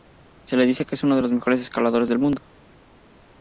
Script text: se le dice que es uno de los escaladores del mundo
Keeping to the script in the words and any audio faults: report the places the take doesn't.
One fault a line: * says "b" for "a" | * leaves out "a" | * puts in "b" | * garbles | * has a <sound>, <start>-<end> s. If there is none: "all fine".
* puts in "mejores"